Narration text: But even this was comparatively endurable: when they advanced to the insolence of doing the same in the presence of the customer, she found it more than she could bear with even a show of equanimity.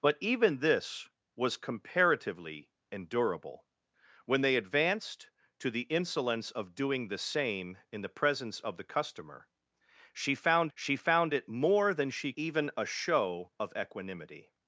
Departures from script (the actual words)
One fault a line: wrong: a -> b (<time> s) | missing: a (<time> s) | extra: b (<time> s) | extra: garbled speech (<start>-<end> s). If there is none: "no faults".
extra: she found (10.7 s)
missing: could bear with (12.3 s)